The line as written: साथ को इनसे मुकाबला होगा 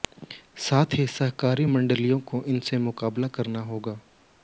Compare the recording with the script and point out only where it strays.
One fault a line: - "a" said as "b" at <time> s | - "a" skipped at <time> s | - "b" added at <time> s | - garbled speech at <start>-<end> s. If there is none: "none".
- "ही सहकारी मंडियों" added at 0.9 s
- "करना" added at 3.3 s